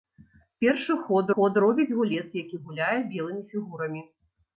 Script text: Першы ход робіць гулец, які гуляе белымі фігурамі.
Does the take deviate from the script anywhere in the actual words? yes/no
yes